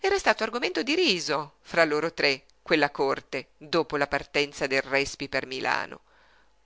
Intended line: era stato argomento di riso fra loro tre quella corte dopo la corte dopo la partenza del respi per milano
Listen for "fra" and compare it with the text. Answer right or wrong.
right